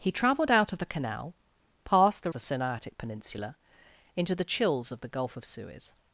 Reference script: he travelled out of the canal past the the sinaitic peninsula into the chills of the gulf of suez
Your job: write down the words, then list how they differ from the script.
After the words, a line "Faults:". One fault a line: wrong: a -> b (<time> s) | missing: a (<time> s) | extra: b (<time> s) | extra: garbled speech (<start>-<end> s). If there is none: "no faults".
he travelled out of the canal past the the sinaitic peninsula into the chills of the gulf of suez
Faults:
no faults